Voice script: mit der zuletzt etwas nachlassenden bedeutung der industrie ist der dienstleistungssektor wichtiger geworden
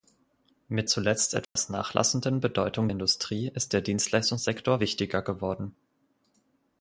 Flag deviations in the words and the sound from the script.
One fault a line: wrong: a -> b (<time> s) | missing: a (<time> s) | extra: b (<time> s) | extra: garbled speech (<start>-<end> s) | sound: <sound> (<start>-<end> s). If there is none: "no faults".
missing: der (0.9 s)
sound: dropout (1.4-1.6 s)
missing: der (2.9 s)